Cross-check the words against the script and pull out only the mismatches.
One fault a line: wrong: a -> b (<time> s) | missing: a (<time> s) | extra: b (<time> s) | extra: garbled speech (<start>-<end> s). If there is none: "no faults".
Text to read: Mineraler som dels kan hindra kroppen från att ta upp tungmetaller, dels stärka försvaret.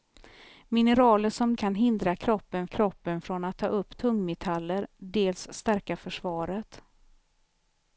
missing: dels (1.6 s)
extra: kroppen (2.7 s)